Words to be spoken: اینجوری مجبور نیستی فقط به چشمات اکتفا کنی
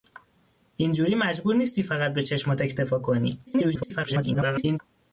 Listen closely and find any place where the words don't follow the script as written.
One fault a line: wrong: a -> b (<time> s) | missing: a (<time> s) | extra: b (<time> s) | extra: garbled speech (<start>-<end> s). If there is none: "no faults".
extra: garbled speech (3.5-4.8 s)